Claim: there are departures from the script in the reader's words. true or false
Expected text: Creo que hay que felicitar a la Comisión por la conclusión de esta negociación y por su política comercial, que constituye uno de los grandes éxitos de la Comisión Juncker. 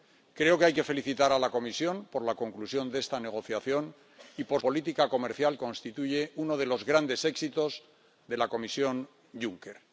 true